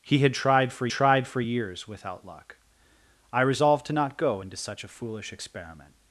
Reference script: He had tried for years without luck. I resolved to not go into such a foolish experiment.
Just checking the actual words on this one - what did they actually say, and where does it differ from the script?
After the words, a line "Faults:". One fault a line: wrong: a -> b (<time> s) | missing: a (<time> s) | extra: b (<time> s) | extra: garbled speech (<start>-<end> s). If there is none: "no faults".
He had tried for tried for years without luck. I resolved to not go into such a foolish experiment.
Faults:
extra: tried for (0.9 s)